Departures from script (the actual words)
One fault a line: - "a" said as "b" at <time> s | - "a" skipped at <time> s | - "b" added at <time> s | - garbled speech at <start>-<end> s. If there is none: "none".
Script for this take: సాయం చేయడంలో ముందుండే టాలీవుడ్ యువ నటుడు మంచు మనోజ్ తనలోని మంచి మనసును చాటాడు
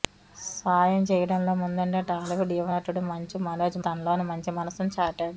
none